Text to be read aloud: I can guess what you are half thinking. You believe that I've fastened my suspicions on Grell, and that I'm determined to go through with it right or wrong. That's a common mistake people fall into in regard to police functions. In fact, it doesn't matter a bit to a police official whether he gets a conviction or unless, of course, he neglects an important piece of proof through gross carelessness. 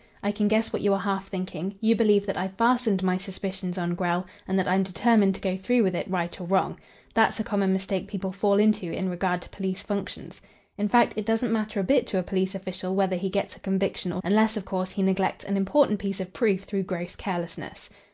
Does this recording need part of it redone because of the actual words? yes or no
no